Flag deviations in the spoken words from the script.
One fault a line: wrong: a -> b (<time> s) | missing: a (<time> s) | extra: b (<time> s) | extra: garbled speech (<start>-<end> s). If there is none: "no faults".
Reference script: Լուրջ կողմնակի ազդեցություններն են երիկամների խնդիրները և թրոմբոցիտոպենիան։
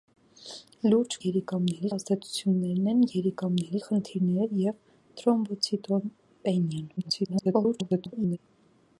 wrong: կողմնակի -> երիկամների (1.2 s)
extra: garbled speech (7.0-8.4 s)